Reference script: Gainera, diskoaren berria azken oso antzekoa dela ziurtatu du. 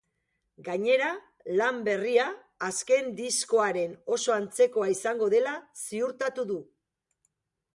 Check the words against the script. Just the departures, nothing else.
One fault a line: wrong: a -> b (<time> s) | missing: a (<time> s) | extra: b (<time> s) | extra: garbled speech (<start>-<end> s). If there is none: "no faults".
wrong: diskoaren -> lan (1.6 s)
extra: diskoaren (3.2 s)
extra: izango (5.0 s)